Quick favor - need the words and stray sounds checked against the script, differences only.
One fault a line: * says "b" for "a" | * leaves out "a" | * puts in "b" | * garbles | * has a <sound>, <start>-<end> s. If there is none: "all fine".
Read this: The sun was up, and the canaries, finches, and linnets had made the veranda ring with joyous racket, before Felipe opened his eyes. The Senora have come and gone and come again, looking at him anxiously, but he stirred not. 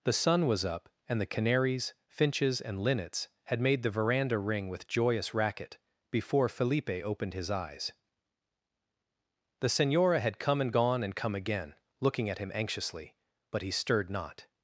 * says "had" for "have"